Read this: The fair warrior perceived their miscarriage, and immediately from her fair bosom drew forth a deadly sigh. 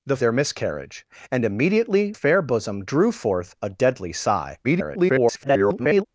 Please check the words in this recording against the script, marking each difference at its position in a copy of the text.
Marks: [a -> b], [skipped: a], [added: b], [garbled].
The [skipped: fair warrior perceived] their miscarriage, and immediately [skipped: from her] fair bosom drew forth a deadly sigh. [garbled]